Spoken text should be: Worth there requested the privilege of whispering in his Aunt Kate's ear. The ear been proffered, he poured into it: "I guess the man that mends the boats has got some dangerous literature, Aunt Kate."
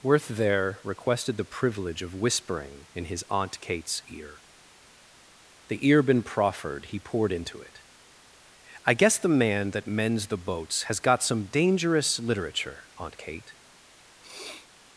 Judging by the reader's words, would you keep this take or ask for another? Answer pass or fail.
pass